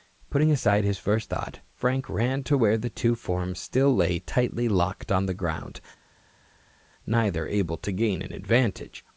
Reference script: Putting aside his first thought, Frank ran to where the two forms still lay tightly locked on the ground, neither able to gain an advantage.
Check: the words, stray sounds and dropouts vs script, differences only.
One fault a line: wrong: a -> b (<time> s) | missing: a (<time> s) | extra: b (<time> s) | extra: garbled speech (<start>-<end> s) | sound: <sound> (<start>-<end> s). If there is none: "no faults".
no faults